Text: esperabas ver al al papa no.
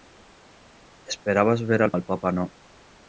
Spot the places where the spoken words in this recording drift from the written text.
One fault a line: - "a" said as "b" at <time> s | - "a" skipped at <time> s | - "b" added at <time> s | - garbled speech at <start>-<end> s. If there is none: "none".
none